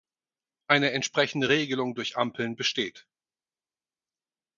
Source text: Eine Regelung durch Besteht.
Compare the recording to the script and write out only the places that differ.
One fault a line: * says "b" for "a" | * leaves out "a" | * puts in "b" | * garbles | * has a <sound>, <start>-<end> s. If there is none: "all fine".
* puts in "entsprechende"
* puts in "Ampeln"